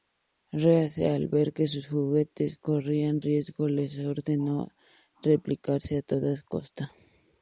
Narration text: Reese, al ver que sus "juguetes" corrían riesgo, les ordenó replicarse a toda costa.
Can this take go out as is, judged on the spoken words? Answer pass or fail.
pass